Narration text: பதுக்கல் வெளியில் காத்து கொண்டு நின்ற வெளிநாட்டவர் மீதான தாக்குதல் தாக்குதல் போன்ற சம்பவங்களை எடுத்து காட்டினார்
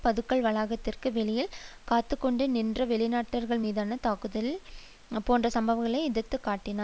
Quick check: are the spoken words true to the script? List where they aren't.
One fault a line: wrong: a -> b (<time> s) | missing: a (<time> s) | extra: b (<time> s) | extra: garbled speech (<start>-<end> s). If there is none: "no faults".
extra: வளாகத்திற்கு (0.5 s)
missing: தாக்குதல் (4.5 s)